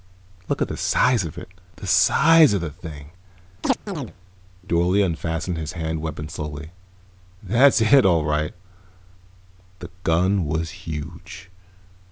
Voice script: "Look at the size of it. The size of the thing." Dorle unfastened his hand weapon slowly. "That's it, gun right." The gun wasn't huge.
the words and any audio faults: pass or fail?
fail